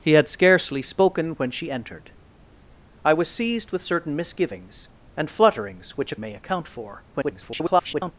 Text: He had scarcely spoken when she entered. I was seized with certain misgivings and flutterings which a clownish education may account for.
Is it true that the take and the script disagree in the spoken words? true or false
true